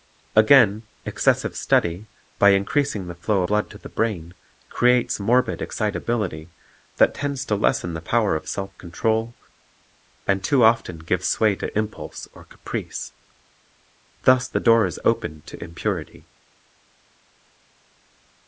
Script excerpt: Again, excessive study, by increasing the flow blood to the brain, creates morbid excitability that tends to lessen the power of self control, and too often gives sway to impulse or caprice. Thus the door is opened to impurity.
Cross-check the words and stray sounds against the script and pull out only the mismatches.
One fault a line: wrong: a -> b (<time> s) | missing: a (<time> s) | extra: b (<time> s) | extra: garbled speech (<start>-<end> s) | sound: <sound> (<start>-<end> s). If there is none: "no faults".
no faults